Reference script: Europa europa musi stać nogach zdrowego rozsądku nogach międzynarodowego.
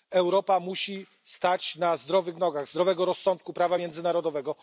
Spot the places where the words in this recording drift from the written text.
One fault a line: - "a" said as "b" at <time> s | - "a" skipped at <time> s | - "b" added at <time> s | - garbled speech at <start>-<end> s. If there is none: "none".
- "europa" skipped at 0.6 s
- "na zdrowych" added at 1.8 s
- "nogach" said as "prawa" at 3.5 s